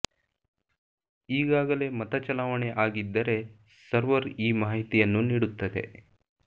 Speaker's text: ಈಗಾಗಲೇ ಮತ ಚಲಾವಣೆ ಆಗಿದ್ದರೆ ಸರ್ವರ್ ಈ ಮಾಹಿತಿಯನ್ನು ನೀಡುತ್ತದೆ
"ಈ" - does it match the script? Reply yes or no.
yes